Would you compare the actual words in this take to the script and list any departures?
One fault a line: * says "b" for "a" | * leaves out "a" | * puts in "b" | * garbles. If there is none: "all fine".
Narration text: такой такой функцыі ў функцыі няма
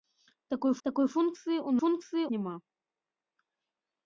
all fine